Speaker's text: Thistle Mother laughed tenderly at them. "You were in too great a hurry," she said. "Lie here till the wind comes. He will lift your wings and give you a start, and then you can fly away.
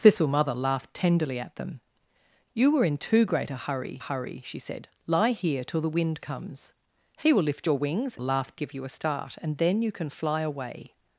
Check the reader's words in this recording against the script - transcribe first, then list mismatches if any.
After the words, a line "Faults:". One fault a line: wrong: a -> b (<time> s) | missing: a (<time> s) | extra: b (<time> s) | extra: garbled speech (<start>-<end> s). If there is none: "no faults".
Thistle Mother laughed tenderly at them. "You were in too great a hurry hurry," she said. "Lie here till the wind comes. He will lift your wings laughed give you a start, and then you can fly away.
Faults:
extra: hurry (4.0 s)
wrong: and -> laughed (8.2 s)